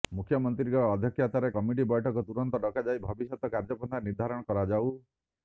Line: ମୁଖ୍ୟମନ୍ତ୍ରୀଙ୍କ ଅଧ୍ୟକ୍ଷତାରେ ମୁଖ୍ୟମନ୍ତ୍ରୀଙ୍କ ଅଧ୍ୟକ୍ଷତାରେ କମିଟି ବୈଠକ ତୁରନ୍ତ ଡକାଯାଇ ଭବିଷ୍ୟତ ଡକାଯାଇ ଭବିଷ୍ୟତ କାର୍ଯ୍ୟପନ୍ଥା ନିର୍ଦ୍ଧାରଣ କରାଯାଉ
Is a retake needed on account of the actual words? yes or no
yes